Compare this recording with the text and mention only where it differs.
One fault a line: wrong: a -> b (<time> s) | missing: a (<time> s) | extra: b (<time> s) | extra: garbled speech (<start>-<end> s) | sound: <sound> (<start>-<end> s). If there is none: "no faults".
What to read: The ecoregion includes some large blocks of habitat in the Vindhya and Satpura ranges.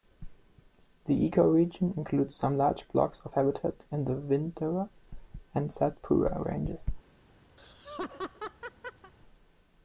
sound: laugh (7.6-9.1 s)